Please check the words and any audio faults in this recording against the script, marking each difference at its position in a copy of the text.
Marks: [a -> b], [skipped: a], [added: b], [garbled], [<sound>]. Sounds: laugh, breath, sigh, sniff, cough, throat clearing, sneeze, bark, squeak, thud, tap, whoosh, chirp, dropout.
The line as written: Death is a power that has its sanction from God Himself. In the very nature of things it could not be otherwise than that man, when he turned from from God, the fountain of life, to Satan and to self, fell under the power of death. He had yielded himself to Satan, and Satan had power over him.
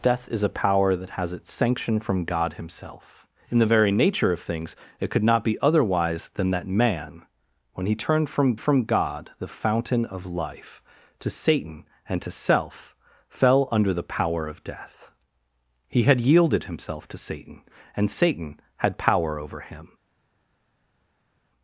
Death is a power that has its sanction from God Himself. In the very nature of things it could not be otherwise than that man, when he turned from from God, the fountain of life, to Satan and to self, fell under the power of death. He had yielded himself to Satan, and Satan had power over him.